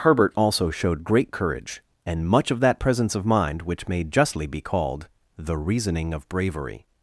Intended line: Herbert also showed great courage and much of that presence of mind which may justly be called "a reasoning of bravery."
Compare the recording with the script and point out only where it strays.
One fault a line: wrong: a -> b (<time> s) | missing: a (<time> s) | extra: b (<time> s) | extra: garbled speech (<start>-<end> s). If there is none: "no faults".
wrong: a -> the (5.4 s)